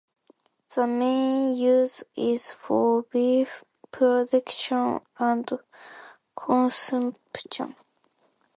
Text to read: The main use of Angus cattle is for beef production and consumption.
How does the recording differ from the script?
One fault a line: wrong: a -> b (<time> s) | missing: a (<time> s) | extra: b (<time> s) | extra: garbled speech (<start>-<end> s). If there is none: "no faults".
missing: of Angus cattle (2.0 s)